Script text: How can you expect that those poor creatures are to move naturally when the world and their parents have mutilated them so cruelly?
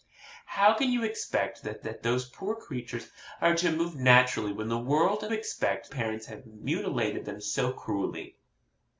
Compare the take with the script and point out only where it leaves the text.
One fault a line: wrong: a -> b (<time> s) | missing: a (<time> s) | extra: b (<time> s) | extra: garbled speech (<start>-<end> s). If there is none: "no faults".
extra: that (1.8 s)
wrong: their -> expect (5.3 s)